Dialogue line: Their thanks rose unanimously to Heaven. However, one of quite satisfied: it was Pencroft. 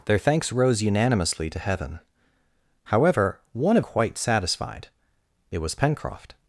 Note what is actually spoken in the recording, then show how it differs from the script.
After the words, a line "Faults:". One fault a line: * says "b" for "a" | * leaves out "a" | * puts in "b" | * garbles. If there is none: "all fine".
Their thanks rose unanimously to Heaven. However, one of quite satisfied: it was Pencroft.
Faults:
all fine